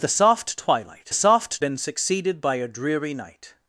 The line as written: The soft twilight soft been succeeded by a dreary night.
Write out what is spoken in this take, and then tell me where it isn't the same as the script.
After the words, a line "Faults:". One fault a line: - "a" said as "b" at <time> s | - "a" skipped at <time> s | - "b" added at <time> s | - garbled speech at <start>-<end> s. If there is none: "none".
The soft twilight soft been succeeded by a dreary night.
Faults:
none